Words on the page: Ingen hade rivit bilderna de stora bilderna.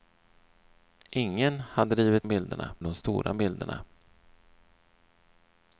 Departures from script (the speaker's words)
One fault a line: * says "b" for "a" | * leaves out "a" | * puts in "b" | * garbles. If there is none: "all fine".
all fine